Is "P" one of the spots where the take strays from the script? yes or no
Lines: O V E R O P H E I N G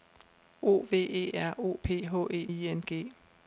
no